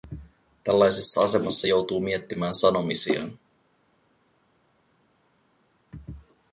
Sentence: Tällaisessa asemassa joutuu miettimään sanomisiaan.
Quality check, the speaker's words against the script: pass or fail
pass